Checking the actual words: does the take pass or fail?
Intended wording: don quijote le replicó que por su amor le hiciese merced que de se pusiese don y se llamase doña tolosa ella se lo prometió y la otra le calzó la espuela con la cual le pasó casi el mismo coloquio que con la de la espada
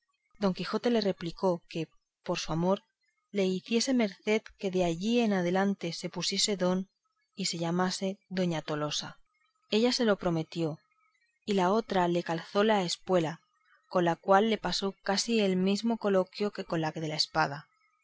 fail